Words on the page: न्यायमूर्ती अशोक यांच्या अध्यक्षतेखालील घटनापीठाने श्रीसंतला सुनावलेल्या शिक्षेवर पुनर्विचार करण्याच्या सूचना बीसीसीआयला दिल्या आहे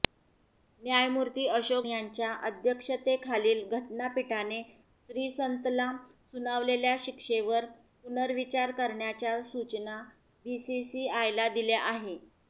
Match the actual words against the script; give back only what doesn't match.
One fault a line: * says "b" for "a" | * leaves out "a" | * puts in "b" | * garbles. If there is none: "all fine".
all fine